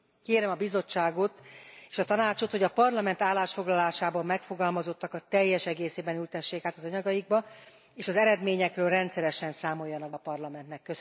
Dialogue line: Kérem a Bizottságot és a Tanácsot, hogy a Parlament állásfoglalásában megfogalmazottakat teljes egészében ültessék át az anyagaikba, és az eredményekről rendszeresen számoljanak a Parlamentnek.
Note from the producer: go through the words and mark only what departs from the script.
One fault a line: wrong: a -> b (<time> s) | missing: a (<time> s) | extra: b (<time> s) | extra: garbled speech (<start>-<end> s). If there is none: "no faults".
no faults